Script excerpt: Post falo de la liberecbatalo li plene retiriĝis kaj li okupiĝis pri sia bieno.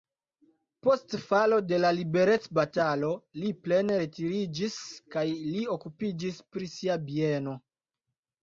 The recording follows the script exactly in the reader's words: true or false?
true